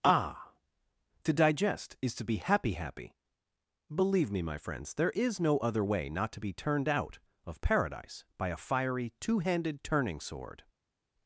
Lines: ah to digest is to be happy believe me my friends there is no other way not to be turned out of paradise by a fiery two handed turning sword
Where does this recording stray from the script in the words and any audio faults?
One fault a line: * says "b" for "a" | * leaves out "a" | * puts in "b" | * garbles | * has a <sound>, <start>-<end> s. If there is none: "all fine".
* puts in "happy"